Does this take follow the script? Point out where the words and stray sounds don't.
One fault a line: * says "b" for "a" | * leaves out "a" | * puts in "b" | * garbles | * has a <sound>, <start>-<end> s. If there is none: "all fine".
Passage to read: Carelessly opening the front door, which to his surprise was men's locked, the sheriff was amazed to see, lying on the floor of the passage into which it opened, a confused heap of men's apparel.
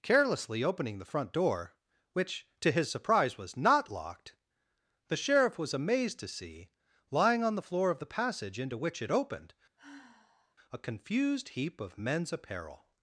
* says "not" for "men's"
* has a sigh, 9.8-10.6 s